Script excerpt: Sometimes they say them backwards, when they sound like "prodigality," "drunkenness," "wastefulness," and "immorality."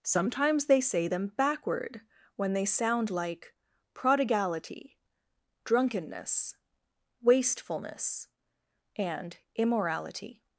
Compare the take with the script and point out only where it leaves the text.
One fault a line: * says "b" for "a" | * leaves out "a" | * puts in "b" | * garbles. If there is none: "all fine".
* says "backward" for "backwards"